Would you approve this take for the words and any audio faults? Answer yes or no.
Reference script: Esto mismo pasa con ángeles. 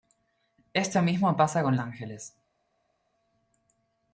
yes